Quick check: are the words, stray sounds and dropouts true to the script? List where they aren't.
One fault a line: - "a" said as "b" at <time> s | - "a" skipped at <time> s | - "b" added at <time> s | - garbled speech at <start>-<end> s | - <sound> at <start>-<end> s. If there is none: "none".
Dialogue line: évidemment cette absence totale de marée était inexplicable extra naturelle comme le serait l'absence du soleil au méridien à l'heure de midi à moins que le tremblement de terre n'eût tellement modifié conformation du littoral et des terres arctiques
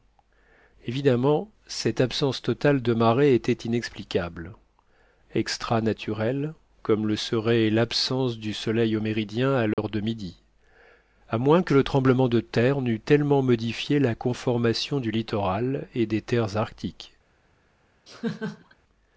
- dropout at 9.7-9.8 s
- "la" added at 14.0 s
- laugh at 18.1-18.7 s